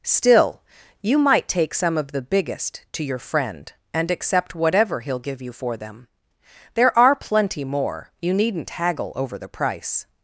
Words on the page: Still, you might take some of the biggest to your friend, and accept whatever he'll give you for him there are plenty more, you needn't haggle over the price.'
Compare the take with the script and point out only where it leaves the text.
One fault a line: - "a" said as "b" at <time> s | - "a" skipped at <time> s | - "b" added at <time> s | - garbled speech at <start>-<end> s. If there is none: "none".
- "him" said as "them" at 5.8 s